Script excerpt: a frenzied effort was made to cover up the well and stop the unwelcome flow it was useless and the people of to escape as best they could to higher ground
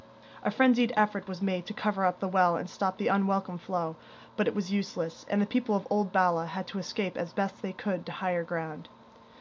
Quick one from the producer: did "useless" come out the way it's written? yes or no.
yes